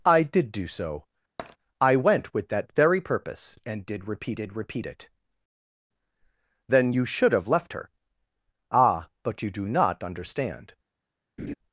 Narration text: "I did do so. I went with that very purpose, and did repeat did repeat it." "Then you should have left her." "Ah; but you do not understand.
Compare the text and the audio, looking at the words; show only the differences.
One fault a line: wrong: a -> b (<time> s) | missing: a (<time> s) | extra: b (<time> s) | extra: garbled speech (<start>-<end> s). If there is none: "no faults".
no faults